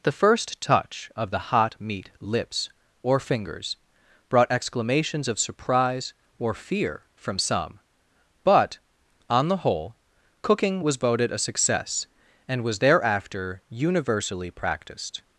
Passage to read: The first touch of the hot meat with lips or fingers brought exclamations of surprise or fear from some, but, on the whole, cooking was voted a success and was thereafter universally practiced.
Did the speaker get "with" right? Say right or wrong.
wrong